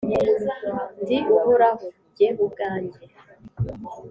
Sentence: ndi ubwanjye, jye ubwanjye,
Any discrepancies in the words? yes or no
yes